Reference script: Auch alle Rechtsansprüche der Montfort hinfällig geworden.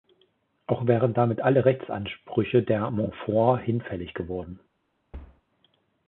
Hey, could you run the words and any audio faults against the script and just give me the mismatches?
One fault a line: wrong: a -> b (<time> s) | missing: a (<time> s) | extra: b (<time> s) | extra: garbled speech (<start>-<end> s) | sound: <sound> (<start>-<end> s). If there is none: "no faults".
extra: wären damit (0.9 s)
sound: thud (5.1-5.4 s)